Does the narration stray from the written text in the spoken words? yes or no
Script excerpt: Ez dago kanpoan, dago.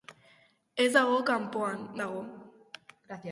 no